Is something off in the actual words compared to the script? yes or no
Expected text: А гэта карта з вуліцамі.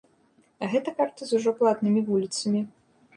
yes